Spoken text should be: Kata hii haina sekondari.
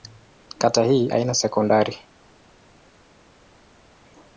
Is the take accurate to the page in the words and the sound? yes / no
yes